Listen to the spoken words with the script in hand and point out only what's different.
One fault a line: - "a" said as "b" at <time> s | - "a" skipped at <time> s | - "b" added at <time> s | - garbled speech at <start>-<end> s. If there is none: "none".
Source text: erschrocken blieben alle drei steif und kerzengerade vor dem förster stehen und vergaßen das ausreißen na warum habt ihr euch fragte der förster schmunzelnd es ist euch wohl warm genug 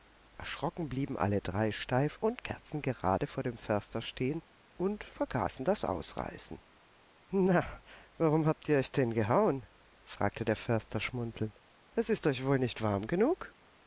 - "denn gehauen" added at 8.9 s
- "nicht" added at 12.6 s